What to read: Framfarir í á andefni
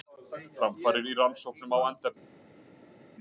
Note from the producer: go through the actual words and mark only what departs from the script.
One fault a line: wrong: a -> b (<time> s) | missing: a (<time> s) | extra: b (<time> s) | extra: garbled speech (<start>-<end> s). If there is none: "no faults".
extra: rannsóknum (1.2 s)